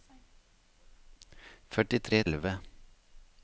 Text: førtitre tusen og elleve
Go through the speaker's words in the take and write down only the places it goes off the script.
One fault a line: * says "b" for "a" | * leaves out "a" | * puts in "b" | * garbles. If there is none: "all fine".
* leaves out "tusen og"